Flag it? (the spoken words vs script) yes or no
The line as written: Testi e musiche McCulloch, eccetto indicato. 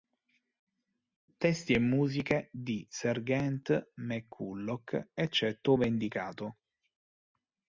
yes